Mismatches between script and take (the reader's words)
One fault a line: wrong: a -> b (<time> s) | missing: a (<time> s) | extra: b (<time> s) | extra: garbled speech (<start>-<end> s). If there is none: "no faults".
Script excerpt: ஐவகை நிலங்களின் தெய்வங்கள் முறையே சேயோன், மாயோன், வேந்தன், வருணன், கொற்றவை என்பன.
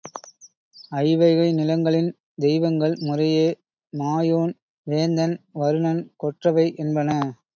missing: சேயோன் (3.5 s)